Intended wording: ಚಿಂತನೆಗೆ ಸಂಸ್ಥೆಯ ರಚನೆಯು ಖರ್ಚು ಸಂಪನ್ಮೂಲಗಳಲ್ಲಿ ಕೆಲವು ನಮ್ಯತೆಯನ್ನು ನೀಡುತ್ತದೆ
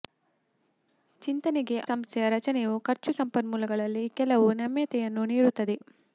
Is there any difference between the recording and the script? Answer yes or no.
no